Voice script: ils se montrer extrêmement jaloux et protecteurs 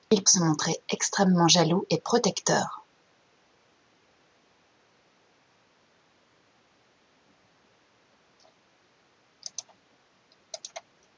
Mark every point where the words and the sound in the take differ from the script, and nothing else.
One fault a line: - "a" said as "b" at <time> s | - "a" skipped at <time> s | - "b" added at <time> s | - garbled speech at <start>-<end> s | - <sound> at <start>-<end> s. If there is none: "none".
none